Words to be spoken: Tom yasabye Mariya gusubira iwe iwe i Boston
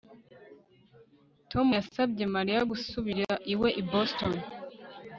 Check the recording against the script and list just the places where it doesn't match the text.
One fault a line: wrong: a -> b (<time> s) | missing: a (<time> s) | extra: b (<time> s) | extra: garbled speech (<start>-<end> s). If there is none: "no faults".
missing: iwe (3.7 s)